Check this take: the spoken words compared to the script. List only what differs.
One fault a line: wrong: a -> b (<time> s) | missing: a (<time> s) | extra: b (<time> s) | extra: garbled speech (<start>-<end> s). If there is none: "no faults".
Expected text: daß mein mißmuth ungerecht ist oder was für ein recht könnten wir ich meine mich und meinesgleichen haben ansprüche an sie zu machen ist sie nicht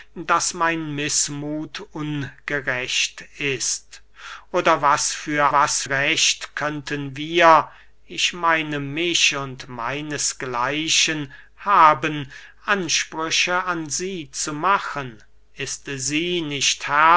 wrong: ein -> was (5.5 s)